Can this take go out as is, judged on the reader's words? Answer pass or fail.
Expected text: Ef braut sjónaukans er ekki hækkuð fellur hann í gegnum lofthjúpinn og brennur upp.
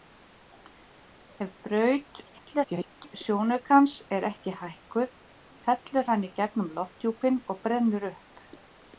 fail